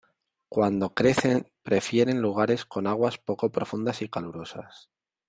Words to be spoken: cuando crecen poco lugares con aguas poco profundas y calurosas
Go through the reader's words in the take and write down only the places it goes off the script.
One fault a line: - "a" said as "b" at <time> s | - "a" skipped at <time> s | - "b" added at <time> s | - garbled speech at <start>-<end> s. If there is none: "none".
- "poco" said as "prefieren" at 1.6 s